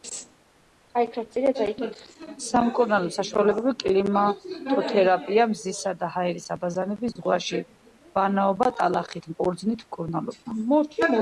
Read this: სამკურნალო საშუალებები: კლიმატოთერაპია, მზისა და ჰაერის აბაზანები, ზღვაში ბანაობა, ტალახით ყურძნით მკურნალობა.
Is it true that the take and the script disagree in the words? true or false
false